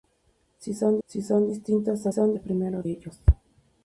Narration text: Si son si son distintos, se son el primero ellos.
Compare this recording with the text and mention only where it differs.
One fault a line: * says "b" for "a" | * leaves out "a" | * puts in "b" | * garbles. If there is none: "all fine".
all fine